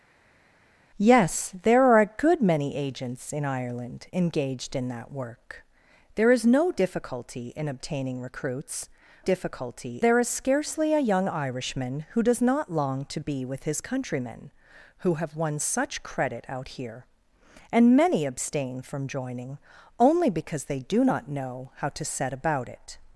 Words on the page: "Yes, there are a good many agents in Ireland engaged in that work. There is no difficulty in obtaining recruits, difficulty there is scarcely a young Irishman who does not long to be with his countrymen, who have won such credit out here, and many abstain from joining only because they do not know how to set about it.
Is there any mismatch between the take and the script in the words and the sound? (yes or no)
no